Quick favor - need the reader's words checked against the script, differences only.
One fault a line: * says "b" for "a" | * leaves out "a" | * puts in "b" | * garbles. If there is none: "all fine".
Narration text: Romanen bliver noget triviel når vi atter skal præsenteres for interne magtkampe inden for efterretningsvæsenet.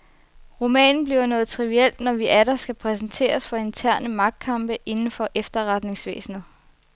all fine